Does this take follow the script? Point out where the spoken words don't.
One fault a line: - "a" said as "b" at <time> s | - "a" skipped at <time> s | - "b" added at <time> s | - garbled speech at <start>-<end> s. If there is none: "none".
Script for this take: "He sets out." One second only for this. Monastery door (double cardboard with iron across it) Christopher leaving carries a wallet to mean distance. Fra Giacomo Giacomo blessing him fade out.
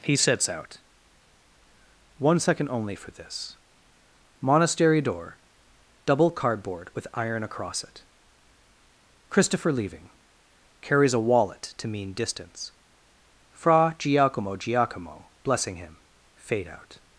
none